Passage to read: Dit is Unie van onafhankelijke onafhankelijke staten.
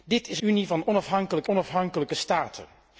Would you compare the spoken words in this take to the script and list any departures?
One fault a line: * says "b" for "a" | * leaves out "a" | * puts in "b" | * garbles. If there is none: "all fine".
all fine